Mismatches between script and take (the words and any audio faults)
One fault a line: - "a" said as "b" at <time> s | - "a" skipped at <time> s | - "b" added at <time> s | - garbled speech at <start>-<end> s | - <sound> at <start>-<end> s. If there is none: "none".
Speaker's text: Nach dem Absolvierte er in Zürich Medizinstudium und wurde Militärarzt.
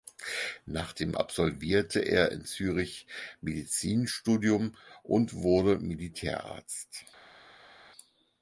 none